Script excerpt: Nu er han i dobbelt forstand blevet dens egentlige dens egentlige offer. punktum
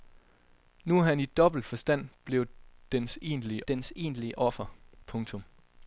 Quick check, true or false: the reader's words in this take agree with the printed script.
true